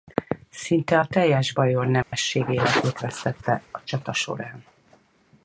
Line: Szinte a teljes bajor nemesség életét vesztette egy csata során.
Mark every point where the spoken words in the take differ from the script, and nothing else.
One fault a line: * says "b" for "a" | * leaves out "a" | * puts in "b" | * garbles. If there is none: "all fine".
* says "a" for "egy"